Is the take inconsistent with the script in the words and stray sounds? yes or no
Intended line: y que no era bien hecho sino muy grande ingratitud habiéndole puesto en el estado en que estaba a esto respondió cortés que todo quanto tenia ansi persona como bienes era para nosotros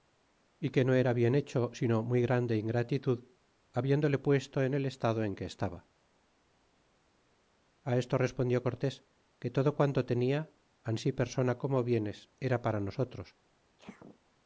yes